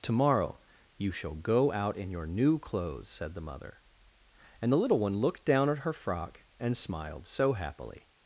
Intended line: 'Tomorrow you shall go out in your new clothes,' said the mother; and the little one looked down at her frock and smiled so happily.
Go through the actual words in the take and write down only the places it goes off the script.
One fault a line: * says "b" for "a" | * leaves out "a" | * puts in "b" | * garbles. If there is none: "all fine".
all fine